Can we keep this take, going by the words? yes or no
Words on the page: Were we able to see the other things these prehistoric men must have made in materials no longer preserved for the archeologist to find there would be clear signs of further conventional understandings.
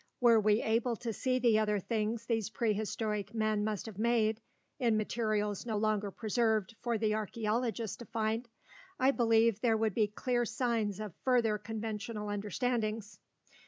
no